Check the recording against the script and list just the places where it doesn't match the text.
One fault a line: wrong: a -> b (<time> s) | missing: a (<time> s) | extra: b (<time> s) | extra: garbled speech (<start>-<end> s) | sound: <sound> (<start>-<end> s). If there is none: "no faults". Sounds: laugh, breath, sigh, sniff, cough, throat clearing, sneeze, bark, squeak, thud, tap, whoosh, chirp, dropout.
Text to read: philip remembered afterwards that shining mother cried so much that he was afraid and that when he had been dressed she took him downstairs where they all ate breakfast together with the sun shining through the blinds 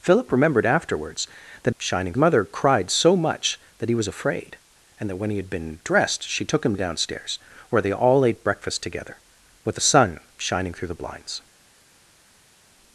no faults